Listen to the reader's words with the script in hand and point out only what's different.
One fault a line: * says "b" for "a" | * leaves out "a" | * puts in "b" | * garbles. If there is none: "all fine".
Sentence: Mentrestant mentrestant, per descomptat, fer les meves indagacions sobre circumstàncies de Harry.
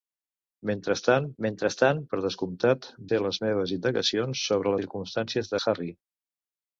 all fine